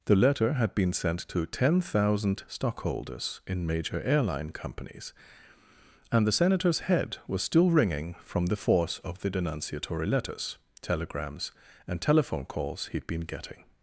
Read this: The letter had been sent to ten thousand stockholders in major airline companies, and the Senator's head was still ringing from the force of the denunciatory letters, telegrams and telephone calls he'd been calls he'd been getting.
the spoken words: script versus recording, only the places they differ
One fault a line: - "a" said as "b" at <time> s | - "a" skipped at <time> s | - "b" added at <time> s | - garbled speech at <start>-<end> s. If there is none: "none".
- "calls he'd been" skipped at 13.2 s